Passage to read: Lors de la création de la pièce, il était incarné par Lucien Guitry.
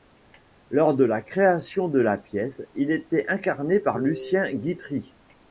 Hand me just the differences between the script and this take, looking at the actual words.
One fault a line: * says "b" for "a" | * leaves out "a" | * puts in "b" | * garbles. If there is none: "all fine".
all fine